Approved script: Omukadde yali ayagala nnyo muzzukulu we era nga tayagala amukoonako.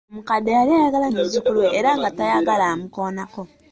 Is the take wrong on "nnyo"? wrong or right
wrong